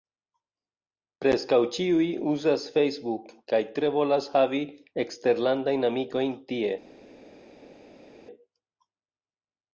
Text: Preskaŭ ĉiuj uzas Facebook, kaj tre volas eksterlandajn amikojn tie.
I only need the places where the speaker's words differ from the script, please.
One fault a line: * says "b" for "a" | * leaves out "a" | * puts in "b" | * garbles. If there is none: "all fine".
* puts in "havi"